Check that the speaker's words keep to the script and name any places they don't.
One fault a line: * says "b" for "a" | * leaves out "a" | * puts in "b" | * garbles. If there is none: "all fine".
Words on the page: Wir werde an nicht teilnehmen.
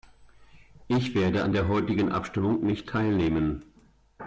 * says "Ich" for "Wir"
* puts in "der heutigen Abstimmung"